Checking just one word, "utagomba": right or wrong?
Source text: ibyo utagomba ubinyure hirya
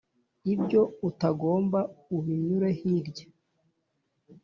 right